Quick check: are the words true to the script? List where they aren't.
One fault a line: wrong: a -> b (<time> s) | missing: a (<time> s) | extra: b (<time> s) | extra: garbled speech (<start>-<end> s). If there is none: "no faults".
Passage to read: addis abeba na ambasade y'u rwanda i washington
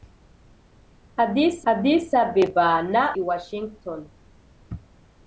extra: addis (1.7 s)
missing: ambasade y'u rwanda (3.0 s)